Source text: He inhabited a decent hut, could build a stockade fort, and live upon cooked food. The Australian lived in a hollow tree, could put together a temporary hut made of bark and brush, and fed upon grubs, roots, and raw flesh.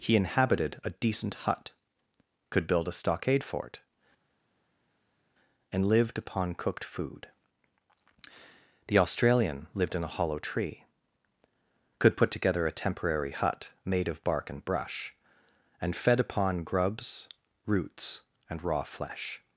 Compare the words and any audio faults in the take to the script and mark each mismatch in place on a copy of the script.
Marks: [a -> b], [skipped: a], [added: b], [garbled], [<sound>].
He inhabited a decent hut, could build a stockade fort, and [live -> lived] upon cooked food. The Australian lived in a hollow tree, could put together a temporary hut made of bark and brush, and fed upon grubs, roots, and raw flesh.